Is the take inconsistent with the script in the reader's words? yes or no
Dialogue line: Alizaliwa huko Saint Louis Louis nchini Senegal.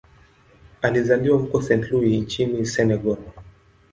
yes